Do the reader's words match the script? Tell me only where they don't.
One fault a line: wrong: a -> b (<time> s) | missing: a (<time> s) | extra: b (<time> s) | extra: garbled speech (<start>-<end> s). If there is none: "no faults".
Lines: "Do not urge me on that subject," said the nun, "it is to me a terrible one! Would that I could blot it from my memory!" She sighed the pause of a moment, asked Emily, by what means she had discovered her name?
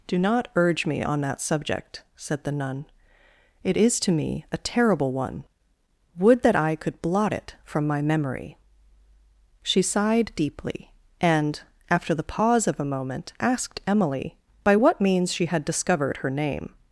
extra: deeply and after (10.4 s)